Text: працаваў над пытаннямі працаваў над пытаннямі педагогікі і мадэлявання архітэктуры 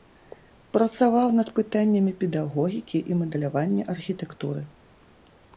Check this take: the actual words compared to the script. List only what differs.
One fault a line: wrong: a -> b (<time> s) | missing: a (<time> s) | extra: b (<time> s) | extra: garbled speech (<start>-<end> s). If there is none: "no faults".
missing: працаваў над пытаннямі (2.1 s)